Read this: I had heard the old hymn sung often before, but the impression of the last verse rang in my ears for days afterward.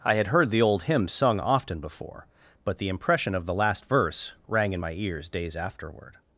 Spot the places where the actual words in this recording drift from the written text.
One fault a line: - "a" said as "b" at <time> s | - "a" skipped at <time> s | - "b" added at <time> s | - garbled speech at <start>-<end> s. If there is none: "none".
- "for" skipped at 5.3 s